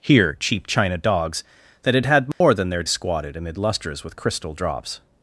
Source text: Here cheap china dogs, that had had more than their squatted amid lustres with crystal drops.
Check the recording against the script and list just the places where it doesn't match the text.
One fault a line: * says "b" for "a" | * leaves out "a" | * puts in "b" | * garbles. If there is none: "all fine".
all fine